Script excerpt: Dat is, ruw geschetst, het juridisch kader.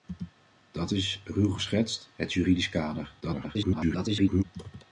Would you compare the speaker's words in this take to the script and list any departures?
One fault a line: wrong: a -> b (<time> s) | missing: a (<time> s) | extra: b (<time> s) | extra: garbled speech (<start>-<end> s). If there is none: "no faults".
extra: garbled speech (3.2-4.4 s)